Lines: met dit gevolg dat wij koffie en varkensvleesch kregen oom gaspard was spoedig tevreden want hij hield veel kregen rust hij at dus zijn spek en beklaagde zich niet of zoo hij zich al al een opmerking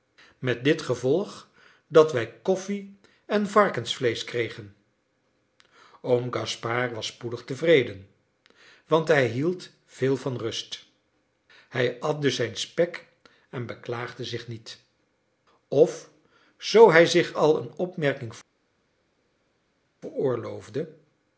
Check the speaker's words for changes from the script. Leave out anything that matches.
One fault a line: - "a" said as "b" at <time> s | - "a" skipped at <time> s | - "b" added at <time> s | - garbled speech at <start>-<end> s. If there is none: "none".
- "kregen" said as "van" at 10.2 s
- "al" skipped at 17.6 s